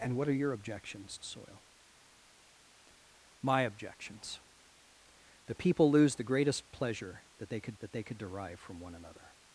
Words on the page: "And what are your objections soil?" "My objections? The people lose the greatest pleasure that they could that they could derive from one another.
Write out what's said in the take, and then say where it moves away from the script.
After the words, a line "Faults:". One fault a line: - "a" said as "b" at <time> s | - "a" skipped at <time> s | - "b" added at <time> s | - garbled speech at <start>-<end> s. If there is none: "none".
"And what are your objections soil?" "My objections? The people lose the greatest pleasure that they could that they could derive from one another.
Faults:
none